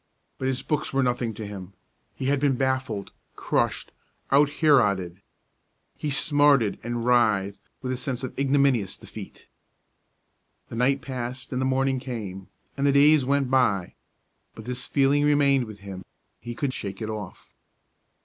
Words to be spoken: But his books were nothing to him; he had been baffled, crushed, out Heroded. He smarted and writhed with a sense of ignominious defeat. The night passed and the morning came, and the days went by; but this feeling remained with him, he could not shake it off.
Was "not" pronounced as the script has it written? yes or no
no